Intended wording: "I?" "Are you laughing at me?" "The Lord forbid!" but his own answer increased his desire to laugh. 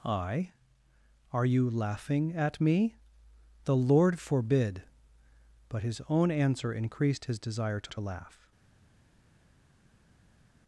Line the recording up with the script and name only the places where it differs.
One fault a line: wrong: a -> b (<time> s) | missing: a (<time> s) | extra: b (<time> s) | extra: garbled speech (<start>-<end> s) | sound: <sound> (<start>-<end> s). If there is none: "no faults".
extra: to (7.9 s)